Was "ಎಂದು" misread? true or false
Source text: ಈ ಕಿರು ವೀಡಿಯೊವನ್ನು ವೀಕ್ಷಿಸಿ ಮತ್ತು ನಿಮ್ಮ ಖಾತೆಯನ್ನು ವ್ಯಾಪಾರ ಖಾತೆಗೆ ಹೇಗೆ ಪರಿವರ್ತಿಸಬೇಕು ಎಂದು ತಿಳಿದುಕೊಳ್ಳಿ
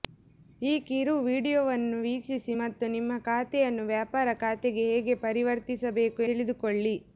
true